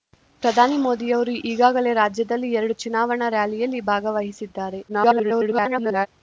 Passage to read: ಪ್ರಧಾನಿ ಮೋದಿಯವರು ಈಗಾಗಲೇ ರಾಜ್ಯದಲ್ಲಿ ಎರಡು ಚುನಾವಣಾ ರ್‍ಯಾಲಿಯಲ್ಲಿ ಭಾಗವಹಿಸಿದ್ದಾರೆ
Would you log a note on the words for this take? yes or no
yes